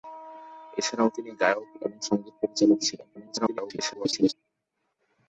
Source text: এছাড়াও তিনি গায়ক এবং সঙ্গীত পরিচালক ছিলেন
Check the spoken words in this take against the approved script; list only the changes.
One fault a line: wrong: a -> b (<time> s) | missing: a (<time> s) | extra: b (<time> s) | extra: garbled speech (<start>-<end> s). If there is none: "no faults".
extra: garbled speech (3.2-4.3 s)